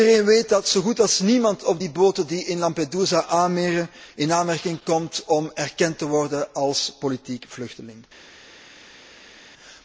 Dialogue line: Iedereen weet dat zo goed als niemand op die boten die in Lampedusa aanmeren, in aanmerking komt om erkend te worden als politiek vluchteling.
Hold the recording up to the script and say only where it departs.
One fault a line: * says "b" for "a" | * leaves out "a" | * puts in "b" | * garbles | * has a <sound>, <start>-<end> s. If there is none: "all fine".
all fine